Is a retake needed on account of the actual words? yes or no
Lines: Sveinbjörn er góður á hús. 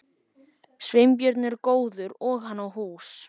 yes